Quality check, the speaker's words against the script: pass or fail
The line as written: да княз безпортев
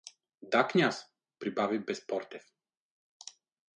fail